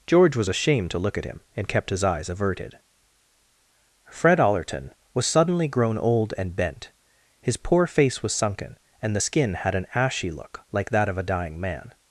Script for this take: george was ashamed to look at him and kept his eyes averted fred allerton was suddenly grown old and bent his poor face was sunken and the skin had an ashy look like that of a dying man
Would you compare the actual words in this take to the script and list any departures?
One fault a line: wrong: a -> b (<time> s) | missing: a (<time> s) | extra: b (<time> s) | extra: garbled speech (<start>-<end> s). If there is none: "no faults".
no faults